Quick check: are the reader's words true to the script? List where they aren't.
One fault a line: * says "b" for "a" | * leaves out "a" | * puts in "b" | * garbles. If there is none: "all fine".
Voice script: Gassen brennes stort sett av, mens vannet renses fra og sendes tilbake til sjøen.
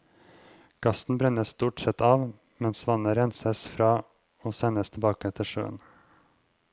all fine